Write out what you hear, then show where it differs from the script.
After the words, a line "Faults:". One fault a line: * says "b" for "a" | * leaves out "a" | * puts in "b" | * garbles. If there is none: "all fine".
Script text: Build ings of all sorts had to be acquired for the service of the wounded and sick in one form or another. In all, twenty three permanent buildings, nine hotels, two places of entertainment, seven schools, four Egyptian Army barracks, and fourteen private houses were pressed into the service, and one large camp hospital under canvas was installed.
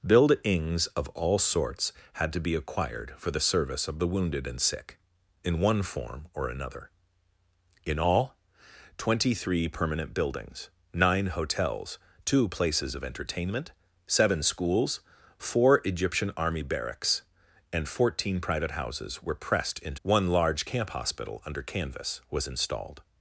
Build ings of all sorts had to be acquired for the service of the wounded and sick in one form or another. In all, twenty three permanent buildings, nine hotels, two places of entertainment, seven schools, four Egyptian Army barracks, and fourteen private houses were pressed into one large camp hospital under canvas was installed.
Faults:
* leaves out "the service and"